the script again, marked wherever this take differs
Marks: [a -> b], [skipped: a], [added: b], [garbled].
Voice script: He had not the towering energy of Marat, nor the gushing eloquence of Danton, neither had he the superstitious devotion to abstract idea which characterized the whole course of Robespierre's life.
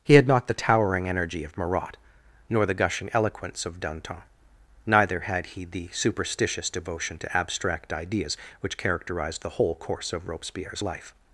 He had not the towering energy of Marat, nor the gushing eloquence of Danton, neither had he the superstitious devotion to abstract [idea -> ideas] which characterized the whole course of Robespierre's life.